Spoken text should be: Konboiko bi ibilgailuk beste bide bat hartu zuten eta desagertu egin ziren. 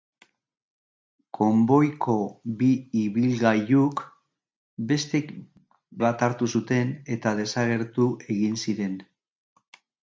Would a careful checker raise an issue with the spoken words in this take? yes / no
yes